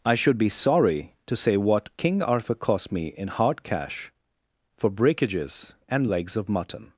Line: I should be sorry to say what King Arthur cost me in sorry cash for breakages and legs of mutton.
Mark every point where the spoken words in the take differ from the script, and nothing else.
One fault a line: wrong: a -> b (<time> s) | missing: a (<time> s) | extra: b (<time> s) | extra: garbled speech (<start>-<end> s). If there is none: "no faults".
wrong: sorry -> hard (3.3 s)